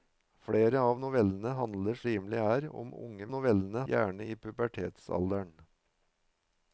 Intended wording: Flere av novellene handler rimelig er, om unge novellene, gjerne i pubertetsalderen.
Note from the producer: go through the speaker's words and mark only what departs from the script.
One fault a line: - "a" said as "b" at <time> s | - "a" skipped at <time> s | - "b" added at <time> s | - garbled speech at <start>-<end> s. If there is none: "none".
none